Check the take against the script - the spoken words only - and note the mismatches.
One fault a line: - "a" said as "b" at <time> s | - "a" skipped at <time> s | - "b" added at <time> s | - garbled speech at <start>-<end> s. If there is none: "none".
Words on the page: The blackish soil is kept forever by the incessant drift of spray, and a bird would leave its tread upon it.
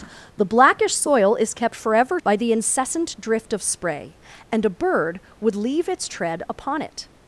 none